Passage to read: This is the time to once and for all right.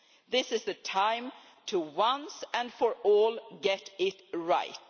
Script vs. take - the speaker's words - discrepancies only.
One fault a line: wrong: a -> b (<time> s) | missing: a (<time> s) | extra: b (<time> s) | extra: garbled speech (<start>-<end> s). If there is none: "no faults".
extra: get it (3.6 s)